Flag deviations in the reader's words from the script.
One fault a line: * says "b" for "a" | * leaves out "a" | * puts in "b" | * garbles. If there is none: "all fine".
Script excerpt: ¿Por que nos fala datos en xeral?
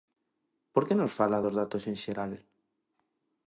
* puts in "dos"